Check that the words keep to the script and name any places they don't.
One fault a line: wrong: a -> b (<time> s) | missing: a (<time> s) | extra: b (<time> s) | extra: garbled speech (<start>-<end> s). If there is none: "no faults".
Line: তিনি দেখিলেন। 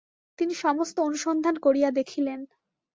extra: সমস্ত অনুসন্ধান করিয়া (0.6 s)